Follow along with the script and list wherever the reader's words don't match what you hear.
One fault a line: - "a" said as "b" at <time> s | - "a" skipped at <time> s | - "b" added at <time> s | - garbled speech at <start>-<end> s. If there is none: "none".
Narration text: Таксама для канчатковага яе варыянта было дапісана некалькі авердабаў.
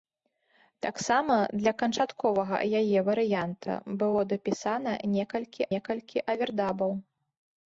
- "некалькі" added at 5.7 s